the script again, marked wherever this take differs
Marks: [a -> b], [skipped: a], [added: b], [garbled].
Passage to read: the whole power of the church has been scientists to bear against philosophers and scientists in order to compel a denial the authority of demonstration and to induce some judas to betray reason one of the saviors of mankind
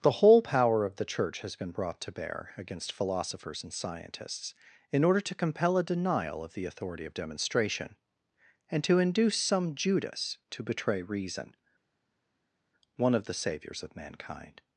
the whole power of the church has been [scientists -> brought] to bear against philosophers and scientists in order to compel a denial [added: of] the authority of demonstration and to induce some judas to betray reason one of the saviors of mankind